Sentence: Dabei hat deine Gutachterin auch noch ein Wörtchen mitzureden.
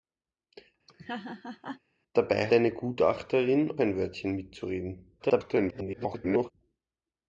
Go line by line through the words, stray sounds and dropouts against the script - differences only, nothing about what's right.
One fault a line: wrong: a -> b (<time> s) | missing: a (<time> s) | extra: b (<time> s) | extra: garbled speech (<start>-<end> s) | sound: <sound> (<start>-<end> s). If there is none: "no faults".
sound: laugh (0.9-1.8 s)
missing: hat (2.5 s)
missing: auch noch (3.8 s)
extra: garbled speech (5.2-6.5 s)